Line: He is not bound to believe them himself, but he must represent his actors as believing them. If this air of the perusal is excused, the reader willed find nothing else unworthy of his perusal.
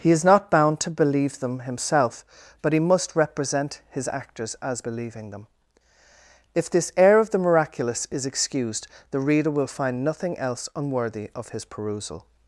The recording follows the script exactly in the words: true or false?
false